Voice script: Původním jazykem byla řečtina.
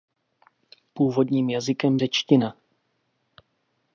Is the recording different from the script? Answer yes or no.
yes